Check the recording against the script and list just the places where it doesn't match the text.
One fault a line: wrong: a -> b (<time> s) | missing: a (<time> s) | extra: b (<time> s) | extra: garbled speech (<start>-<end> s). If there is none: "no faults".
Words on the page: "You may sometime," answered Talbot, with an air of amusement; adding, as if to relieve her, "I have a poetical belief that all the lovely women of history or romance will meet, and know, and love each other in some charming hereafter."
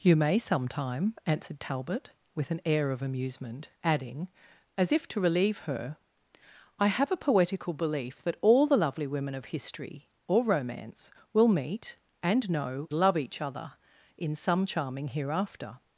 missing: and (12.9 s)